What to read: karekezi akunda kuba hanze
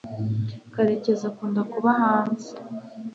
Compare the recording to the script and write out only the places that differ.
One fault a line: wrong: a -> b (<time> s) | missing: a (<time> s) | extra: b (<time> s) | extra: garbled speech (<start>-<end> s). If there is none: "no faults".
no faults